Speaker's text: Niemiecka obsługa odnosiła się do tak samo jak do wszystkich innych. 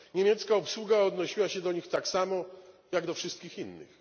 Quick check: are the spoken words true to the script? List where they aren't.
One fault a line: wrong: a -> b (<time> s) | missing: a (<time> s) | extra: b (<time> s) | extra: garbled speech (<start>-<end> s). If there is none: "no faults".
extra: nich (1.7 s)